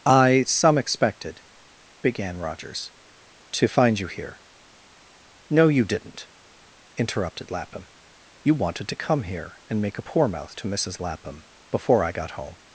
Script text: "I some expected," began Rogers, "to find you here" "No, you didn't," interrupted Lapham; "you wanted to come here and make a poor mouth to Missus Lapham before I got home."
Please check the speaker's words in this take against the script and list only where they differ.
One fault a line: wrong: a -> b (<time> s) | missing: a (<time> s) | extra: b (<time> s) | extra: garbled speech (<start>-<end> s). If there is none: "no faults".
no faults